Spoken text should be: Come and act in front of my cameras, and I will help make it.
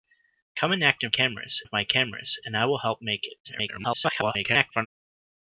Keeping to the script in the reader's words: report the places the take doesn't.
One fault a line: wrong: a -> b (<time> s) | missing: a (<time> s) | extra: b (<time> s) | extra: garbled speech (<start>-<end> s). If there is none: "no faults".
wrong: front -> cameras (1.1 s)
extra: garbled speech (3.4-4.9 s)